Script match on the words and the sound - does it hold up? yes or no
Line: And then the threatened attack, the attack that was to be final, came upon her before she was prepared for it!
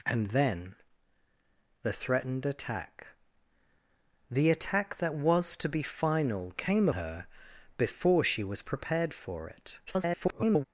no